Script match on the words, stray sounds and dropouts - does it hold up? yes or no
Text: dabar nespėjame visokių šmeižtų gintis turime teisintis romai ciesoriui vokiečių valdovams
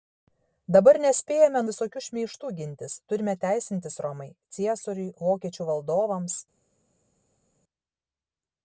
yes